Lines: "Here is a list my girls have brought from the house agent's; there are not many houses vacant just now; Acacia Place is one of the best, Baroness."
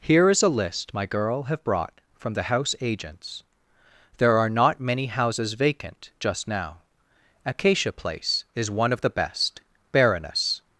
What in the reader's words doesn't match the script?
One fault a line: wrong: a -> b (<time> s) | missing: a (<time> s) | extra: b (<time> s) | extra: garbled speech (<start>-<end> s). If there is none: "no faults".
wrong: girls -> girl (1.1 s)